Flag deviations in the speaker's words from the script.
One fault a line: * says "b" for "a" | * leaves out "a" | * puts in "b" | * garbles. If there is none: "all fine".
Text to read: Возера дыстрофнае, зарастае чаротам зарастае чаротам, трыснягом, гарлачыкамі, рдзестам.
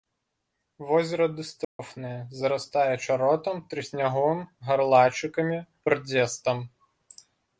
* leaves out "зарастае чаротам"